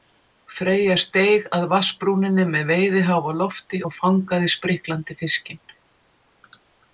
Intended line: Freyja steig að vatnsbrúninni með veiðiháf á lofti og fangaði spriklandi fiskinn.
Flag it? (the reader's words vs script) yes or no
no